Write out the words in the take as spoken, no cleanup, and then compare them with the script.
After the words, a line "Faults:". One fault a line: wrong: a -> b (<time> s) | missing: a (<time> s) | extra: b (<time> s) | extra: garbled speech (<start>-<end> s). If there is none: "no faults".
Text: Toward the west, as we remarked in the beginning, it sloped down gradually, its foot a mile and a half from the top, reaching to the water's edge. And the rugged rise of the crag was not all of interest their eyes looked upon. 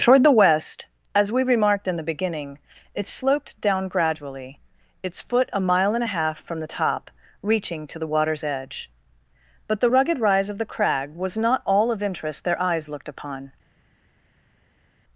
Toward the west, as we remarked in the beginning, it sloped down gradually, its foot a mile and a half from the top, reaching to the water's edge. But the rugged rise of the crag was not all of interest their eyes looked upon.
Faults:
wrong: And -> But (9.7 s)